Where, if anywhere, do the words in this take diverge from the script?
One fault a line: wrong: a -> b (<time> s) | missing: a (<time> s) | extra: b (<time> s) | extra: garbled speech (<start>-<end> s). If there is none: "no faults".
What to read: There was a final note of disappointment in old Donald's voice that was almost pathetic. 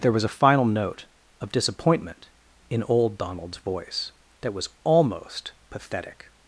no faults